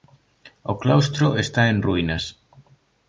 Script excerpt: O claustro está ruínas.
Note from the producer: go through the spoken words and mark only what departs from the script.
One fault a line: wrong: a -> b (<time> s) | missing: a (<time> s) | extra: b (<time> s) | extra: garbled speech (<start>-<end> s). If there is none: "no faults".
extra: en (1.7 s)